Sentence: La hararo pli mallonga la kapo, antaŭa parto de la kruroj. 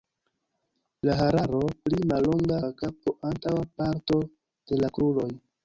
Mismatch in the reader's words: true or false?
false